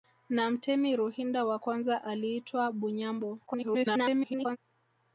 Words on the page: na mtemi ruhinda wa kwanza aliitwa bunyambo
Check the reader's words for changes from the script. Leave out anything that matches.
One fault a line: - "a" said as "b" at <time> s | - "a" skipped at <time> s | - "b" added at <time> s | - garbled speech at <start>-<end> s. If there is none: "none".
- garbled speech at 3.5-4.6 s